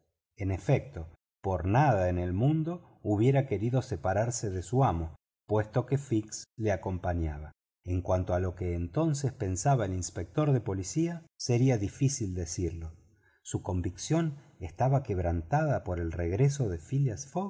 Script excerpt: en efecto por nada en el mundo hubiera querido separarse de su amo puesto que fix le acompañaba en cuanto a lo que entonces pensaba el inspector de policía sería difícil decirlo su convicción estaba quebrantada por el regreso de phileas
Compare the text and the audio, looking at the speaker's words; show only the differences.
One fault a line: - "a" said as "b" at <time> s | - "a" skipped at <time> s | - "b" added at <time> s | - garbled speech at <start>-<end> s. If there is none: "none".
none